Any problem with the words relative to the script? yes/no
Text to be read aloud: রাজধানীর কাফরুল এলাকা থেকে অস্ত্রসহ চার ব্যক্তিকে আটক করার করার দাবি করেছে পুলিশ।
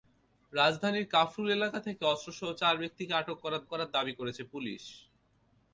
no